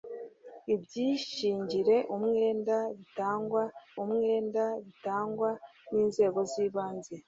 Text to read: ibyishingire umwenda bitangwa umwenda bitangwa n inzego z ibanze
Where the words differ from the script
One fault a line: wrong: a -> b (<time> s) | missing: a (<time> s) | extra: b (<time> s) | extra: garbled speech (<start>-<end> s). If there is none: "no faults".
no faults